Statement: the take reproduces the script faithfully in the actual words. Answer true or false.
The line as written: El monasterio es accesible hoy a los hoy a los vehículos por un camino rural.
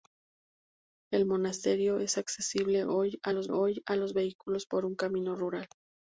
true